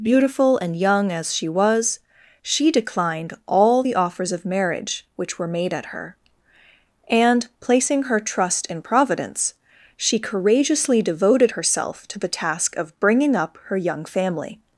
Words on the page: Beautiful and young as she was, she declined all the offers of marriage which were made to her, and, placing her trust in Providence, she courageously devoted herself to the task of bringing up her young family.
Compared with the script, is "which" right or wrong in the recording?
right